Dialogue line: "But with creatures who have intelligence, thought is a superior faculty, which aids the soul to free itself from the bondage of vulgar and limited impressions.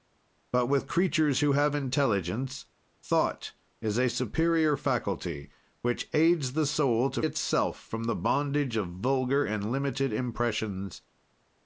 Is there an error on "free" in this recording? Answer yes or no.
yes